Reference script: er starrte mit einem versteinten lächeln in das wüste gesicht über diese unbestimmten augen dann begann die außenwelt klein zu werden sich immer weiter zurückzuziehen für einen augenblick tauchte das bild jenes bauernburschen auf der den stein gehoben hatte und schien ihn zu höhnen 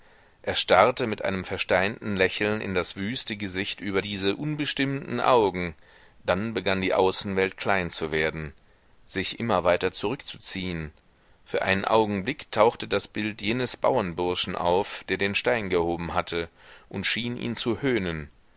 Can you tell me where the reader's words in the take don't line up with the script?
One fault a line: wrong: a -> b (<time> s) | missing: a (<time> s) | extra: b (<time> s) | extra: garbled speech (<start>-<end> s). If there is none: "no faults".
no faults